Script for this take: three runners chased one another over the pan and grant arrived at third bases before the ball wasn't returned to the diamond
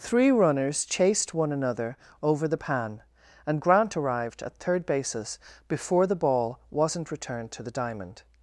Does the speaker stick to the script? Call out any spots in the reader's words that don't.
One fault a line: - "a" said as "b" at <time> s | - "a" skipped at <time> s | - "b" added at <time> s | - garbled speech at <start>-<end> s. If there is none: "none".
none